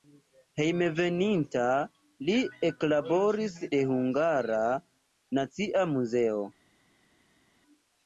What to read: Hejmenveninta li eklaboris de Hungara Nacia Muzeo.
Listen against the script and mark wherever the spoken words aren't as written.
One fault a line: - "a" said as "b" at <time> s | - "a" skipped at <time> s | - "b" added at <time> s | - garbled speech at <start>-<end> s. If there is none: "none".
none